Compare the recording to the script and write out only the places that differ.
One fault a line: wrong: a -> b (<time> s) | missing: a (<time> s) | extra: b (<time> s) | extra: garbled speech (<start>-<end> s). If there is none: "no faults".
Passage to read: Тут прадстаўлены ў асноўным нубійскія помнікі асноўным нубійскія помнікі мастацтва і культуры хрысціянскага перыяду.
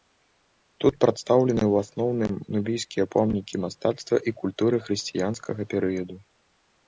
missing: асноўным нубійскія помнікі (3.5 s)